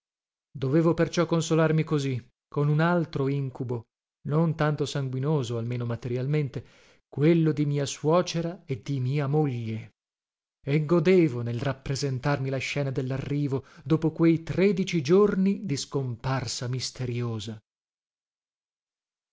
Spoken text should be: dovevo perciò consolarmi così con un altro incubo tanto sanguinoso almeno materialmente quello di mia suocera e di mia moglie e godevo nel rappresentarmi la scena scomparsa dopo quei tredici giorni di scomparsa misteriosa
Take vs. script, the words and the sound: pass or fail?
fail